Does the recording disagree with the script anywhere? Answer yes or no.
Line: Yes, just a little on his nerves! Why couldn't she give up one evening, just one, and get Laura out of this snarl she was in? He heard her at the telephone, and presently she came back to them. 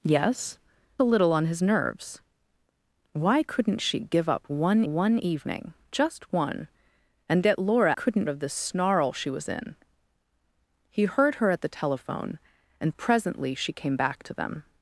yes